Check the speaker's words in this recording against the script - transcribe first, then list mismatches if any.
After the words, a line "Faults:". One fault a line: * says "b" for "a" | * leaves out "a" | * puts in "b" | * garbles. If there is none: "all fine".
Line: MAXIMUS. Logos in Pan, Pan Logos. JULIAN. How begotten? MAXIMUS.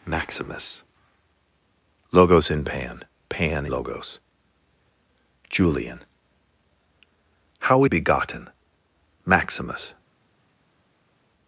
MAXIMUS. Logos in Pan, Pan Logos. JULIAN. How begotten? MAXIMUS.
Faults:
all fine